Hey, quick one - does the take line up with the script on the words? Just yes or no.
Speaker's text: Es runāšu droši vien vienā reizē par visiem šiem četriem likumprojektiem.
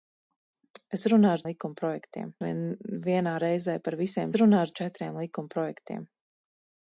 no